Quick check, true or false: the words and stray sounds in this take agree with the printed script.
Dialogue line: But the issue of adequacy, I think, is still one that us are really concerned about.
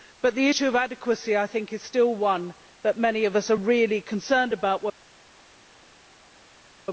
false